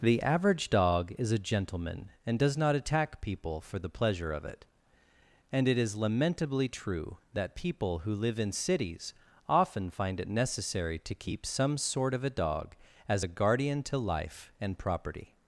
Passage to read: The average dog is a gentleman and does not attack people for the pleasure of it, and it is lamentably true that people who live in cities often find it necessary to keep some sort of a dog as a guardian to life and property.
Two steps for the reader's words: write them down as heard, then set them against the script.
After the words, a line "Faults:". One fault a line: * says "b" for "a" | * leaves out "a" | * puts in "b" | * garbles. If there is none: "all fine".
The average dog is a gentleman and does not attack people for the pleasure of it, and it is lamentably true that people who live in cities often find it necessary to keep some sort of a dog as a guardian to life and property.
Faults:
all fine